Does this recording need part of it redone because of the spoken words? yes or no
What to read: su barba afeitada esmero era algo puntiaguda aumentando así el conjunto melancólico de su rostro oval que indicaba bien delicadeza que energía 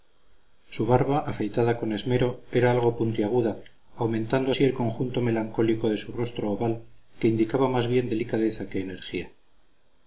yes